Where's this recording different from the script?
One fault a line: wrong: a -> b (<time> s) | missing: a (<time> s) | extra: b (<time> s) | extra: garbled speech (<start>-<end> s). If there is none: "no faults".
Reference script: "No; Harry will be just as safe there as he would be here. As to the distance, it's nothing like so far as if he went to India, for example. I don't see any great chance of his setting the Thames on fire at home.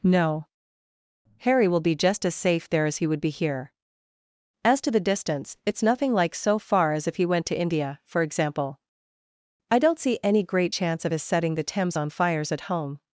wrong: fire -> fires (12.1 s)